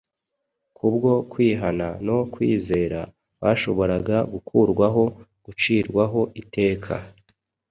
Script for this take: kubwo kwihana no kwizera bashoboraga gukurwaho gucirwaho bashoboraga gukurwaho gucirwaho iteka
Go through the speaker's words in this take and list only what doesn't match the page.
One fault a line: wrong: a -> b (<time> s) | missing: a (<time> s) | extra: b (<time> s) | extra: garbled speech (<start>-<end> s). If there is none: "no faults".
missing: bashoboraga gukurwaho gucirwaho (6.2 s)